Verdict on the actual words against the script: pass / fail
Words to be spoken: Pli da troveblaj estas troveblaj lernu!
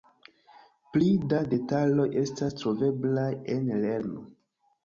fail